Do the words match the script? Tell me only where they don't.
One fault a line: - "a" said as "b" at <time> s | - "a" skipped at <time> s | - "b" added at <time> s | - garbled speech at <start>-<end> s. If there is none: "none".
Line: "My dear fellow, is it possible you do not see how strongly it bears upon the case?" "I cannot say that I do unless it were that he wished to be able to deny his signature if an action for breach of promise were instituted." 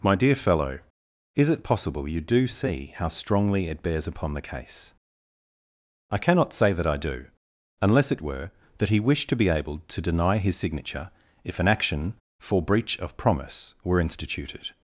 - "not" skipped at 2.5 s